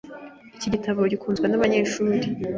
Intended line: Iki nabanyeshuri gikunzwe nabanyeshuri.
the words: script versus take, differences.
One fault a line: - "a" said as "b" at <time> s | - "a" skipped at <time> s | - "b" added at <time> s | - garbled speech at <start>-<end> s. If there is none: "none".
- "nabanyeshuri" said as "gitabo" at 0.7 s